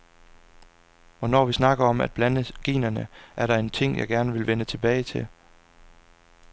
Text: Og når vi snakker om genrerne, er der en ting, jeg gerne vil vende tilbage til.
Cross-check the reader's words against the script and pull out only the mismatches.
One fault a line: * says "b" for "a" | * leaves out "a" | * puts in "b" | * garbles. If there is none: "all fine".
* puts in "at blande"